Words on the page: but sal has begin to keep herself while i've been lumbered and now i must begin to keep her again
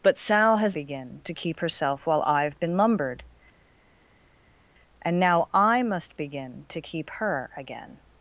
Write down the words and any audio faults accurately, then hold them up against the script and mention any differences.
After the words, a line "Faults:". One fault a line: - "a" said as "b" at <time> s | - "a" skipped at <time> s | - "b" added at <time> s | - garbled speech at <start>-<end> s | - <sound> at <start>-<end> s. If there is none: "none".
but sal has begin to keep herself while i've been lumbered and now i must begin to keep her again
Faults:
none